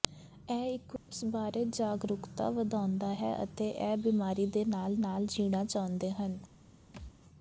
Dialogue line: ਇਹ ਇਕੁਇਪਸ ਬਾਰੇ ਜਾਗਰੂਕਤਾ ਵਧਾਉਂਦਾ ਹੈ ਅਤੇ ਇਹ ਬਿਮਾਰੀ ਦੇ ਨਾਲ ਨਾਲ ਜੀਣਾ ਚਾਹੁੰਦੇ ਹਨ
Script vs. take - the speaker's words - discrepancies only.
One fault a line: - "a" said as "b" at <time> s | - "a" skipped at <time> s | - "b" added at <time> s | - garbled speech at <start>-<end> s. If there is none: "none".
none